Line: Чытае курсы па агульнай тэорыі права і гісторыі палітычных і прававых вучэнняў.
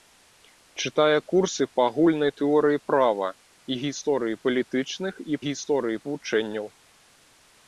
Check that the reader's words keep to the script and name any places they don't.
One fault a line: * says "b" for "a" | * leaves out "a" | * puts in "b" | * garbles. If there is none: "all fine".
* says "гісторыі" for "прававых"